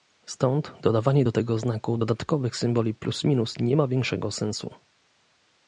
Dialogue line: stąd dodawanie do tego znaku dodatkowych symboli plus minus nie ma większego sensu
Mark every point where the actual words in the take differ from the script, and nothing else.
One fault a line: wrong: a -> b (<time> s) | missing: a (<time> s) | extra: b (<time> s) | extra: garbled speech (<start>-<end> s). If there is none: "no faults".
no faults